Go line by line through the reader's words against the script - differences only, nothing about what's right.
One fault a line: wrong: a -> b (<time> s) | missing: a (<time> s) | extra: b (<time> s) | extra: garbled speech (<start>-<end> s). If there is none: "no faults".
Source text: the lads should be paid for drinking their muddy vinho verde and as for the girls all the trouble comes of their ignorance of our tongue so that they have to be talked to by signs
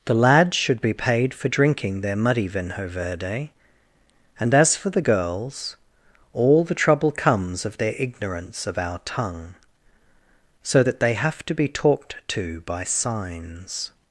no faults